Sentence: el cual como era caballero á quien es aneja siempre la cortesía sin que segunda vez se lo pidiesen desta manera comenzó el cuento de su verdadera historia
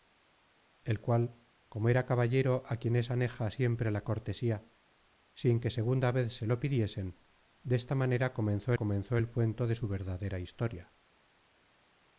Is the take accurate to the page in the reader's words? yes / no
no